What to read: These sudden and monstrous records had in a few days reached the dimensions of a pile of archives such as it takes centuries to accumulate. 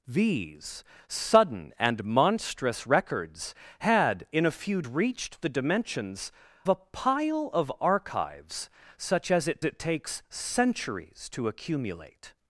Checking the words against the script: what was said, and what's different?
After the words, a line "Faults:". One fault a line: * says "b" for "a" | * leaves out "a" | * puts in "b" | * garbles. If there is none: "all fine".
These sudden and monstrous records had in a few reached the dimensions a pile of archives such as it it takes centuries to accumulate.
Faults:
* leaves out "days"
* leaves out "of"
* puts in "it"